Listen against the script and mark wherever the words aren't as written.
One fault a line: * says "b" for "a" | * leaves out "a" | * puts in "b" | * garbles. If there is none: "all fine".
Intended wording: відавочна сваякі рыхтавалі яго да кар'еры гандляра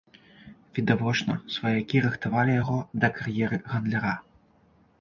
all fine